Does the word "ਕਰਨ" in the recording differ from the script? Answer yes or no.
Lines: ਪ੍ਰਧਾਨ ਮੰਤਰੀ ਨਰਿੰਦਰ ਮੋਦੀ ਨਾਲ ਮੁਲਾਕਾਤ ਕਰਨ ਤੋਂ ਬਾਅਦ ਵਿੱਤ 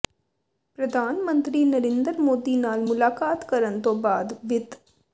no